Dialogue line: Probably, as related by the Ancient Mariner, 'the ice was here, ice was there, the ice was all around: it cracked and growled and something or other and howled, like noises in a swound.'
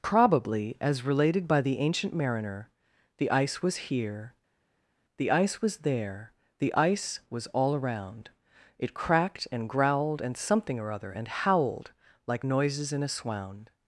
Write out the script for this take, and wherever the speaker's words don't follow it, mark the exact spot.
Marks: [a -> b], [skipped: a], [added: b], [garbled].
Probably, as related by the Ancient Mariner, 'the ice was here, [added: the] ice was there, the ice was all around: it cracked and growled and something or other and howled, like noises in a swound.'